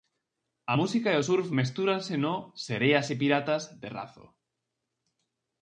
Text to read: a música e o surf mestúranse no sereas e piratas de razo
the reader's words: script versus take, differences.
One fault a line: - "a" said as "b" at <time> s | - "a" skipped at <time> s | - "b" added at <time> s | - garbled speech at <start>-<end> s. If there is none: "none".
none